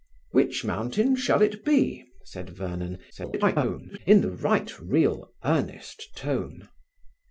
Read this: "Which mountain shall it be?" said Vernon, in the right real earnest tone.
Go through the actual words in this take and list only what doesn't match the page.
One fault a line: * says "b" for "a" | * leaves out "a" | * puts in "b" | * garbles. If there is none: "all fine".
* garbles